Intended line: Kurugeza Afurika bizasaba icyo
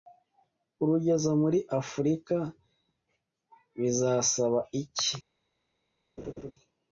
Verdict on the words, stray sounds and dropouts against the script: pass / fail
fail